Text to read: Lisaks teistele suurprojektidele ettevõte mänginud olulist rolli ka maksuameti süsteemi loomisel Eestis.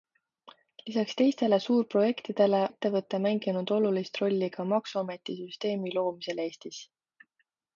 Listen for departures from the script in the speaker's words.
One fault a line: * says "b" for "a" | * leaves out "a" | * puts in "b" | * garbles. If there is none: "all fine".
all fine